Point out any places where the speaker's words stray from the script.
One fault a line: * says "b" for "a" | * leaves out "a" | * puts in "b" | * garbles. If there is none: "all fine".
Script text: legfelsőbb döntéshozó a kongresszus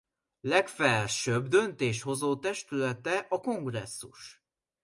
* puts in "testülete"